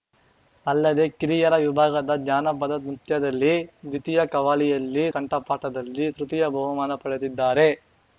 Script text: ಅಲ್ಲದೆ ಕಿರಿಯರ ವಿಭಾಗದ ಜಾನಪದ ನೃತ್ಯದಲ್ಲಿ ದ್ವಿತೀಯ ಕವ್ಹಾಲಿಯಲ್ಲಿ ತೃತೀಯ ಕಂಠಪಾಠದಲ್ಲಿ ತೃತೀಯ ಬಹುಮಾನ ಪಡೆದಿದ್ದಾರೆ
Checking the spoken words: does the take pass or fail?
fail